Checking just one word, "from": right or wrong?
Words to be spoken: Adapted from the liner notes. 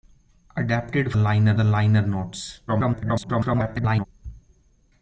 wrong